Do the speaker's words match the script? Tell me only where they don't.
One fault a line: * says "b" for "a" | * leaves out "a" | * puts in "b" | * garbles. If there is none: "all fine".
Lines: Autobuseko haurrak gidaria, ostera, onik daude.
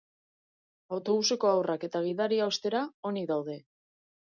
* puts in "eta"